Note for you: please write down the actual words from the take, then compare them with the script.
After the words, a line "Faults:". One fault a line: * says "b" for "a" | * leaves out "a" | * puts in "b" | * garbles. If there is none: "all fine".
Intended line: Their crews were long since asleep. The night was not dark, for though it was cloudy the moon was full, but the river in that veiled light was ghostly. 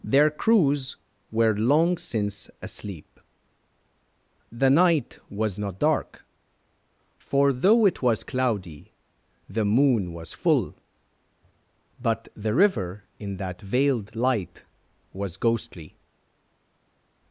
Their crews were long since asleep. The night was not dark, for though it was cloudy the moon was full, but the river in that veiled light was ghostly.
Faults:
all fine